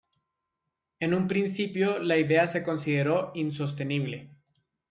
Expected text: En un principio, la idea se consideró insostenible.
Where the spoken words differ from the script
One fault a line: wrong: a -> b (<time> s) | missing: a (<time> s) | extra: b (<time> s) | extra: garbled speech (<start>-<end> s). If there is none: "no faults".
no faults